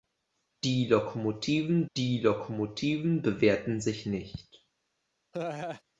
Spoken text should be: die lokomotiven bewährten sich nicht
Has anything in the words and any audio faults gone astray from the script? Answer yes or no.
yes